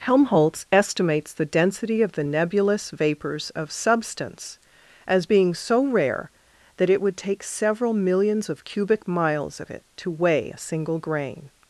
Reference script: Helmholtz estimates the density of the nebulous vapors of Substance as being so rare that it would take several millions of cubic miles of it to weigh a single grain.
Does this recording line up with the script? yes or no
yes